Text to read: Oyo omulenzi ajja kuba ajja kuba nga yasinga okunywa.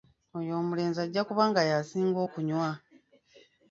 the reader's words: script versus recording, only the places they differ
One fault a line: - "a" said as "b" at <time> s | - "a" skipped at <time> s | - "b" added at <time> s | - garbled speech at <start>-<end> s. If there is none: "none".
- "ajja kuba" skipped at 1.4 s